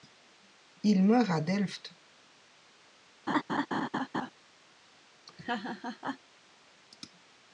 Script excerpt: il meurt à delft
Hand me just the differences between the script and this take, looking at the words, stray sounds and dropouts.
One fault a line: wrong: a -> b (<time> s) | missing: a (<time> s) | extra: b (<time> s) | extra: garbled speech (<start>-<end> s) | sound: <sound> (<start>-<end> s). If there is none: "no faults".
sound: laugh (3.3-4.3 s)
sound: laugh (5.3-6.2 s)